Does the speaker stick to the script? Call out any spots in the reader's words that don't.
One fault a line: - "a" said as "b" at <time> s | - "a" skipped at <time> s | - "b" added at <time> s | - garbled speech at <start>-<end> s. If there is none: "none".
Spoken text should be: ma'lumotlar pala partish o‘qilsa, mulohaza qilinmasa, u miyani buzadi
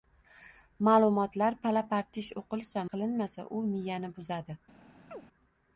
- "mulohaza" skipped at 2.9 s